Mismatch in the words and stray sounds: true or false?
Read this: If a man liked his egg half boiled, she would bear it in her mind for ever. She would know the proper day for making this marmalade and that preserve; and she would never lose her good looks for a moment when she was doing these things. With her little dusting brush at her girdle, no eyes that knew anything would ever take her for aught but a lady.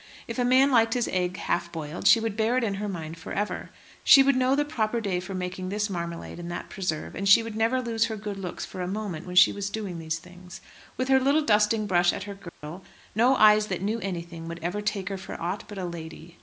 true